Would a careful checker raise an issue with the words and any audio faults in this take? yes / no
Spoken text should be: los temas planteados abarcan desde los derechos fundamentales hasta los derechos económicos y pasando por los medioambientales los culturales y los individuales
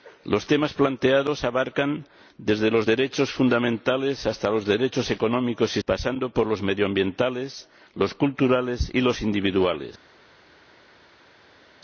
no